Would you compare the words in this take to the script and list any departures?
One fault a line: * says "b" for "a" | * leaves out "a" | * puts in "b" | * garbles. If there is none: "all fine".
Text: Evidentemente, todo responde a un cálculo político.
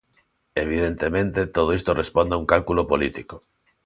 * puts in "isto"